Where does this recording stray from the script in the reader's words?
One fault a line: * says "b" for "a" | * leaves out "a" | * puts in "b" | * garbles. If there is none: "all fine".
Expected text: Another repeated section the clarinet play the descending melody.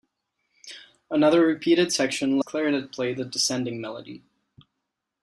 all fine